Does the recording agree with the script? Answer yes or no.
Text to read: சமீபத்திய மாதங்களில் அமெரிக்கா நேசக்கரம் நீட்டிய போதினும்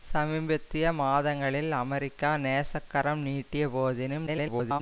no